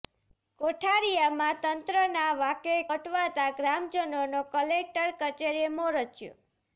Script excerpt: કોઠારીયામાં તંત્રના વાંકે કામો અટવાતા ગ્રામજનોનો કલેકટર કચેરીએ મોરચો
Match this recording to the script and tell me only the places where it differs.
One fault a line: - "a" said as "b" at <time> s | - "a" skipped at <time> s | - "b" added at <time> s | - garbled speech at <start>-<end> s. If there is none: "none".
- "કામો" skipped at 2.8 s